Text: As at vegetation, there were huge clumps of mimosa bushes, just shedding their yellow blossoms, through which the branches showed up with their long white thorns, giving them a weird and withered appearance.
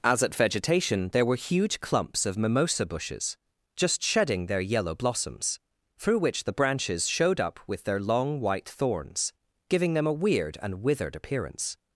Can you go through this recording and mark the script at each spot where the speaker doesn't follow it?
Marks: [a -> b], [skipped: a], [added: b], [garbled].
As at vegetation, there were huge clumps of mimosa bushes, just shedding their yellow blossoms, through which the branches showed up with their long white thorns, giving them a weird and withered appearance.